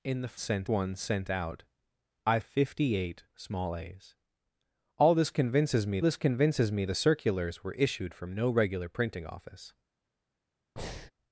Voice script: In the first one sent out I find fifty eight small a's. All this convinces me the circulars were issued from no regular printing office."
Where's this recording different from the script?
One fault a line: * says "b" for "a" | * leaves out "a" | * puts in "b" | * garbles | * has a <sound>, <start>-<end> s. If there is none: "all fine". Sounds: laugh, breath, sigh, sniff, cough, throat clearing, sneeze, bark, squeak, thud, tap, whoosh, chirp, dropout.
* says "sent" for "first"
* leaves out "find"
* puts in "this convinces me"
* has a breath, 10.8-11.1 s